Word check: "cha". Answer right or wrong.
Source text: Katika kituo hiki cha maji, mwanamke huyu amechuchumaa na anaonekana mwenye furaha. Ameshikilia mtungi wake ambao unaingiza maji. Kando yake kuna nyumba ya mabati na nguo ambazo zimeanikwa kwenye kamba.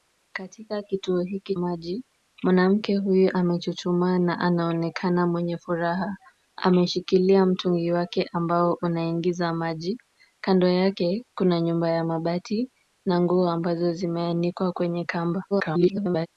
wrong